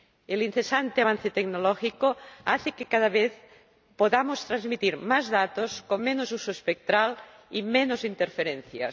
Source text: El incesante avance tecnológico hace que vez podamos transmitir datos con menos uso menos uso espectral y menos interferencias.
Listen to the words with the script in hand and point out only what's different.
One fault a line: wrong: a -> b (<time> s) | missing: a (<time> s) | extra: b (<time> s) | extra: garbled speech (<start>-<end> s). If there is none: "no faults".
extra: cada (2.8 s)
extra: más (5.0 s)
missing: menos uso (6.5 s)